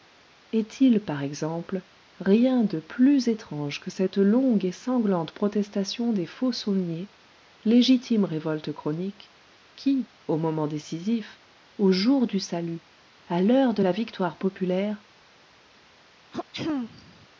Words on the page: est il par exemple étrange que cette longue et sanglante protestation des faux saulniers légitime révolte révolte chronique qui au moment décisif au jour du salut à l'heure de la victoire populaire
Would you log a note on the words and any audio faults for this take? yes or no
yes